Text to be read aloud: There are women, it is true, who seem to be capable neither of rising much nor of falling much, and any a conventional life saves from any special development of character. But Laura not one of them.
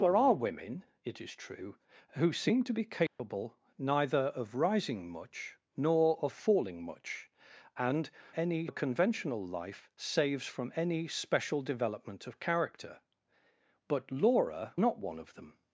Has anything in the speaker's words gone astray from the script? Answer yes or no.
no